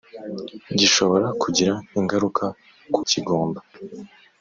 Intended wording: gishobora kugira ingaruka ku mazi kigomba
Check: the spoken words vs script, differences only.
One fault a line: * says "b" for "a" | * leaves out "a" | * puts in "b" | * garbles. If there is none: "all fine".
* leaves out "mazi"